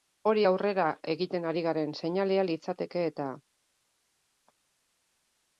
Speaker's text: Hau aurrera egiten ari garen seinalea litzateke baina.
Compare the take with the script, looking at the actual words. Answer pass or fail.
fail